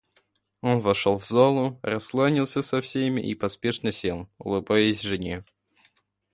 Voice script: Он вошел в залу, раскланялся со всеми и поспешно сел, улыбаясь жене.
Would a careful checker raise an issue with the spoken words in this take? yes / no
no